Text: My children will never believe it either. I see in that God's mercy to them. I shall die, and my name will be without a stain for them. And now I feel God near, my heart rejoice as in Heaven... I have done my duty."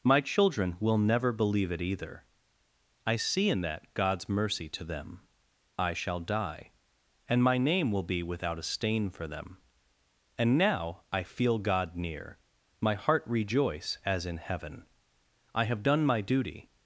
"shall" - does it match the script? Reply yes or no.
yes